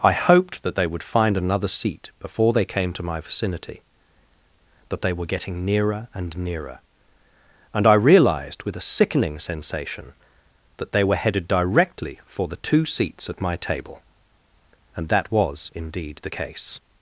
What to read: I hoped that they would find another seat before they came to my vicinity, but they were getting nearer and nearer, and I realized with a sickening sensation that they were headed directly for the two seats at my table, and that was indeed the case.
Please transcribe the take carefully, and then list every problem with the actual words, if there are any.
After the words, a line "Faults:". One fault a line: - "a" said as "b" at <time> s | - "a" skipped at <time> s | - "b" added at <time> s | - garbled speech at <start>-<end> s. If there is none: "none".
I hoped that they would find another seat before they came to my vicinity, that they were getting nearer and nearer, and I realized with a sickening sensation that they were headed directly for the two seats at my table, and that was indeed the case.
Faults:
- "but" said as "that" at 4.9 s